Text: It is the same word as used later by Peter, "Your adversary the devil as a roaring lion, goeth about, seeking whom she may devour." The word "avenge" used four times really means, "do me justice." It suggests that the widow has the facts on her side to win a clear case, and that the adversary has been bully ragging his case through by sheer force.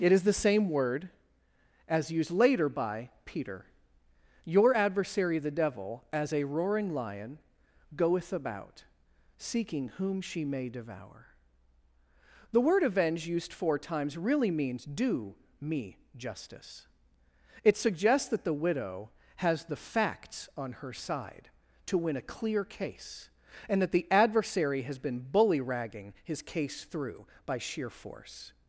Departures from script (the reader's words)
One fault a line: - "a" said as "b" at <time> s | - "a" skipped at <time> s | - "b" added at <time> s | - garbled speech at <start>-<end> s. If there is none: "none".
none